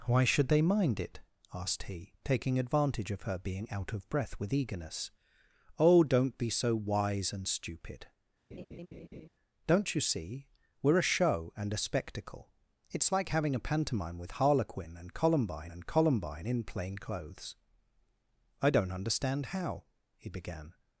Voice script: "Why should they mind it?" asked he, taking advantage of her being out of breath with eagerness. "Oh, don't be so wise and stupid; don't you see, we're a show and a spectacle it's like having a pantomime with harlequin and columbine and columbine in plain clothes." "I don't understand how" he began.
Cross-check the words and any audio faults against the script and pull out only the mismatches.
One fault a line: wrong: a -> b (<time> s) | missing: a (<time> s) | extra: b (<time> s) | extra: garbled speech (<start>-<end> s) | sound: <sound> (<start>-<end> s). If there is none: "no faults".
sound: laugh (8.5-9.3 s)